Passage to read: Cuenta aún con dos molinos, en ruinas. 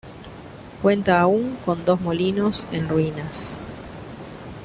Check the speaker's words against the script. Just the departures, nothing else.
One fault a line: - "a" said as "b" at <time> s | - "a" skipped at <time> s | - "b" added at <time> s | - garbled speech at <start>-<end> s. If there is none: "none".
none